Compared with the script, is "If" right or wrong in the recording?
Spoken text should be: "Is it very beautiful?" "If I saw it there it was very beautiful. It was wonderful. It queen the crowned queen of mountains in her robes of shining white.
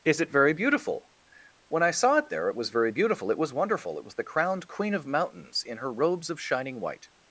wrong